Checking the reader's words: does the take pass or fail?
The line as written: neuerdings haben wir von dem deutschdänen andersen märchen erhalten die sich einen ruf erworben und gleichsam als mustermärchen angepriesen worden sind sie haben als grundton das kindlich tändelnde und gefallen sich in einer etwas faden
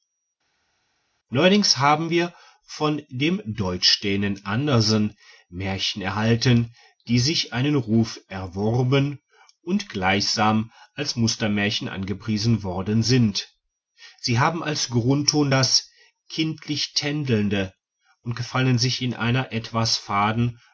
pass